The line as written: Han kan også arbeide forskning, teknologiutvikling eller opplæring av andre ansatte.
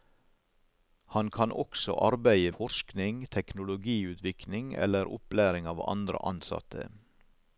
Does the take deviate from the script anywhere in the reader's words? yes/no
no